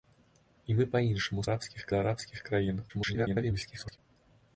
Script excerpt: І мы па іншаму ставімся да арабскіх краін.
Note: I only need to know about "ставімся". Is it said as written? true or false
false